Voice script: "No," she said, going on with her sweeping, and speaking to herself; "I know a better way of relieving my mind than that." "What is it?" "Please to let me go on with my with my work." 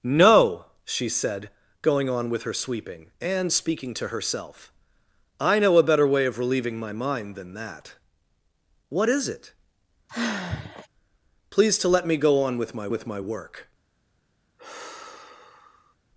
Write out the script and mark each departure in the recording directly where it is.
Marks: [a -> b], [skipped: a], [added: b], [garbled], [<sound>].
"No," she said, going on with her sweeping, and speaking to herself; "I know a better way of relieving my mind than that." "What is it?" [sigh] "Please to let me go on with my with my work." [sigh]